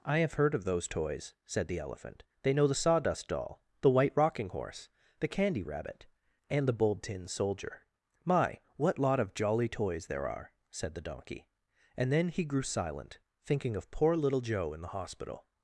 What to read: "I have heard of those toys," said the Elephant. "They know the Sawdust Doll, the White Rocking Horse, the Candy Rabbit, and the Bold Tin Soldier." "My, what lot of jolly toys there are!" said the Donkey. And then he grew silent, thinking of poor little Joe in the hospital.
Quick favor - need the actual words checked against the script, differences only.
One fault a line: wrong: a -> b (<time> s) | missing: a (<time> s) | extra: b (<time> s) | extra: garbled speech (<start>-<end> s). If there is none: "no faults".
no faults